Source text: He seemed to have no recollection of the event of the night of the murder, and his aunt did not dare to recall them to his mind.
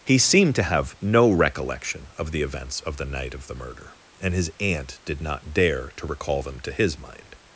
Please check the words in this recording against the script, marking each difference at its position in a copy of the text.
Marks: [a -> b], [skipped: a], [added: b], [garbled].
He seemed to have no recollection of the [event -> events] of the night of the murder, and his aunt did not dare to recall them to his mind.